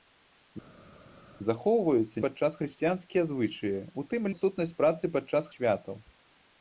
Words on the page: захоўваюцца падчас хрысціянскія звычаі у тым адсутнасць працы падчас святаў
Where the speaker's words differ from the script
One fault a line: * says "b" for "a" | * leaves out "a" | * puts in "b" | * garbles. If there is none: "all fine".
all fine